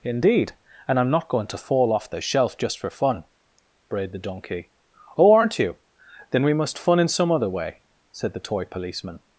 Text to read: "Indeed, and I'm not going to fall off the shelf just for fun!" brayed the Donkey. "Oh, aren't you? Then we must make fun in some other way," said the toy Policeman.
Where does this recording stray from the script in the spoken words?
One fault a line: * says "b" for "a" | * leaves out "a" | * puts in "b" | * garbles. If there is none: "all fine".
* leaves out "make"